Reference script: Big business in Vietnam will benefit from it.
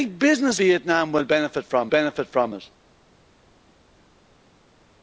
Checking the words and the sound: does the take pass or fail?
fail